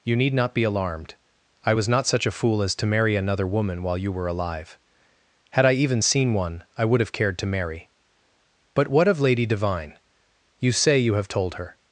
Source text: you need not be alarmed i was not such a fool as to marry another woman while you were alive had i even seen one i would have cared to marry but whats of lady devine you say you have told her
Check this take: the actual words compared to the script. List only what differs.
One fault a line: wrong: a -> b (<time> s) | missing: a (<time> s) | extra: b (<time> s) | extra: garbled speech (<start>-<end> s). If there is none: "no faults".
wrong: whats -> what (8.9 s)